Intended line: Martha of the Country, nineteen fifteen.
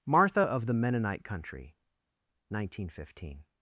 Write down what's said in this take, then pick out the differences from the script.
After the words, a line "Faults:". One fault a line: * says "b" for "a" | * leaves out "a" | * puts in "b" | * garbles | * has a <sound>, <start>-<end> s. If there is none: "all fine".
Martha of the Mennonite Country, nineteen fifteen.
Faults:
* puts in "Mennonite"